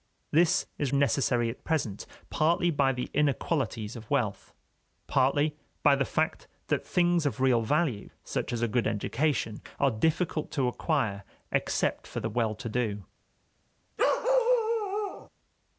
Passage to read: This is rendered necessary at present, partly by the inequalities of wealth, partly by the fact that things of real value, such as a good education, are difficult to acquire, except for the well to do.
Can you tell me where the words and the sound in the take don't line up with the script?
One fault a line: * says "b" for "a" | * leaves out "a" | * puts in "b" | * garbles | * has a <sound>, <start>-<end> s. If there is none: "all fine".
* leaves out "rendered"
* has a bark, 14.0-15.3 s